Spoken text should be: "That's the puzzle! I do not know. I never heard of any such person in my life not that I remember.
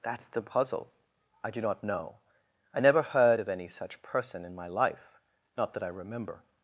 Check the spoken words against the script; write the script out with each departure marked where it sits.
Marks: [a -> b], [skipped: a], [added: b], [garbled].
"That's the puzzle! I do not know. I never heard of any such person in my life not that I remember.